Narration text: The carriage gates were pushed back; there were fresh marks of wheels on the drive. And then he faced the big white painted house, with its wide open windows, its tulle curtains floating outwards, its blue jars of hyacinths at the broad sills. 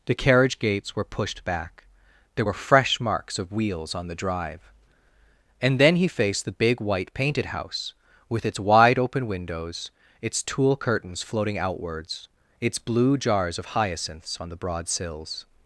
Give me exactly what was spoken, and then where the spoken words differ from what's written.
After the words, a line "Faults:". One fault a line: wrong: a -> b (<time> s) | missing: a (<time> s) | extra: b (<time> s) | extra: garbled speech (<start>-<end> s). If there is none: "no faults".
The carriage gates were pushed back; there were fresh marks of wheels on the drive. And then he faced the big white painted house, with its wide open windows, its tulle curtains floating outwards, its blue jars of hyacinths on the broad sills.
Faults:
wrong: at -> on (14.4 s)